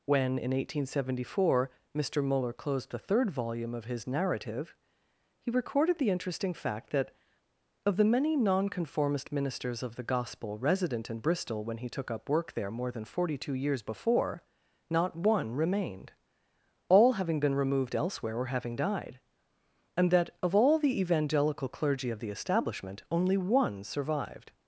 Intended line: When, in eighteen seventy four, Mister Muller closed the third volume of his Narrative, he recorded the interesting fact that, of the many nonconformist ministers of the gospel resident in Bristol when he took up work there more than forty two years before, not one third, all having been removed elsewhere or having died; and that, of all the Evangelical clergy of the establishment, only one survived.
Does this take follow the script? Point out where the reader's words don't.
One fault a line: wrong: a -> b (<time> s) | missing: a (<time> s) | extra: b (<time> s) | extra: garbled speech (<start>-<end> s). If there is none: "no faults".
wrong: third -> remained (15.5 s)